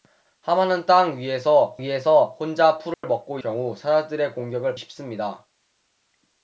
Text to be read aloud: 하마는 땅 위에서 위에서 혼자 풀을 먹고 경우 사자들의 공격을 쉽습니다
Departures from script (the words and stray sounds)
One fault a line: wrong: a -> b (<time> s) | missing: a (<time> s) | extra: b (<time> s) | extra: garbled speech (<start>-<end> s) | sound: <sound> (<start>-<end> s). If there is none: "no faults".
sound: dropout (2.9-3.0 s)